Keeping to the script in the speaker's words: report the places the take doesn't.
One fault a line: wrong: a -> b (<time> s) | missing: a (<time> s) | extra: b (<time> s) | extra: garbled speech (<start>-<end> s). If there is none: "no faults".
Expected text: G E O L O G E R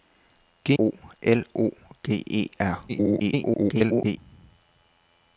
missing: E (0.7 s)
extra: garbled speech (2.9-4.2 s)